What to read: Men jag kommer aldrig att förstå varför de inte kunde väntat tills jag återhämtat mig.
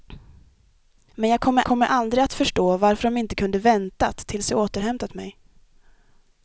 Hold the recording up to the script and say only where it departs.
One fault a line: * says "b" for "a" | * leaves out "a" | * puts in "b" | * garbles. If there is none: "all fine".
* puts in "kommer"